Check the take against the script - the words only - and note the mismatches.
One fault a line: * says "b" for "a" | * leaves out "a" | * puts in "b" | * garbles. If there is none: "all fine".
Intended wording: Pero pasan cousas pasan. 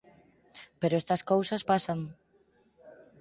* says "estas" for "pasan"